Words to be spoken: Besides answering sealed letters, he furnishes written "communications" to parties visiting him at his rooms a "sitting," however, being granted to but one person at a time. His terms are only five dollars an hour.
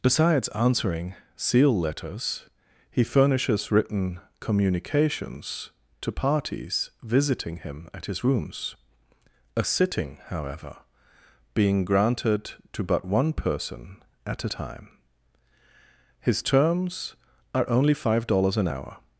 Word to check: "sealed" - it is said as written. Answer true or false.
false